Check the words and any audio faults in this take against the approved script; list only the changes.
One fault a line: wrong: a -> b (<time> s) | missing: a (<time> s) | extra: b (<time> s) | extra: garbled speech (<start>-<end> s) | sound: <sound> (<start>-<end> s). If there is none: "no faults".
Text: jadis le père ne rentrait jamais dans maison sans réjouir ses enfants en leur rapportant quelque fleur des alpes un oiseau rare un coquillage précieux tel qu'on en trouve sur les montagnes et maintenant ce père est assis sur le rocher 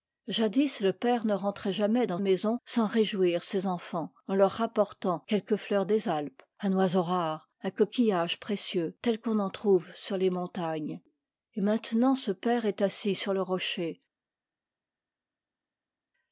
no faults